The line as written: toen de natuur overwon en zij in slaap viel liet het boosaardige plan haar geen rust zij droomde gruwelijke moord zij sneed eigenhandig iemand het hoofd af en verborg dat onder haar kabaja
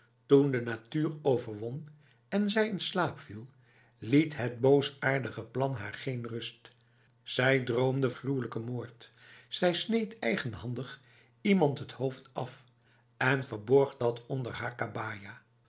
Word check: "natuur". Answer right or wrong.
right